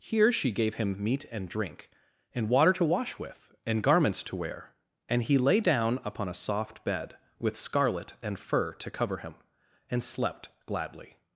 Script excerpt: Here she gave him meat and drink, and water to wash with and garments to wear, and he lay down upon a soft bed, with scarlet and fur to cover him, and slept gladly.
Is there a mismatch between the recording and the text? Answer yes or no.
no